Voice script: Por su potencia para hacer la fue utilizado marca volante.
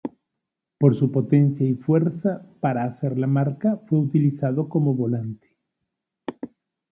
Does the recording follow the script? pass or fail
fail